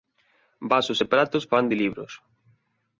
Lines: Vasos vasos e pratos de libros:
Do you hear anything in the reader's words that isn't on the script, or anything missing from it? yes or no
yes